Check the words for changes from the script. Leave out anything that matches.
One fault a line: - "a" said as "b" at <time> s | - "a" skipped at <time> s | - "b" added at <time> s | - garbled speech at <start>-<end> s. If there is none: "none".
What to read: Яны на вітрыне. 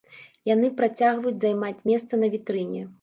- "працягваюць займаць месца" added at 0.8 s